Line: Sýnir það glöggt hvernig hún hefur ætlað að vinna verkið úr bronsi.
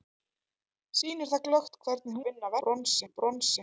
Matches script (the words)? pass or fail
fail